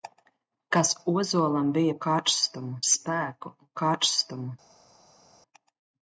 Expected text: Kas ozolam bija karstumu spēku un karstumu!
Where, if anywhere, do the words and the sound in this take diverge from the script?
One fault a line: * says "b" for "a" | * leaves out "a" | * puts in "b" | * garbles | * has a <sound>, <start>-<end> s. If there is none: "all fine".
all fine